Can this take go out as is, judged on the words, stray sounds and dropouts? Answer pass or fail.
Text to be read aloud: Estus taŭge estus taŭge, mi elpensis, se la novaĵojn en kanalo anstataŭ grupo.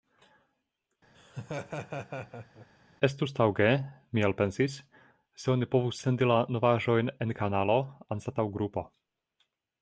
fail